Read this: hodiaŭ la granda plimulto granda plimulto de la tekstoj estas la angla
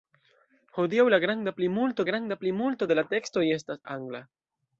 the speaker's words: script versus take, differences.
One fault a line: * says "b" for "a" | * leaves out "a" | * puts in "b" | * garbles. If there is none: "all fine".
all fine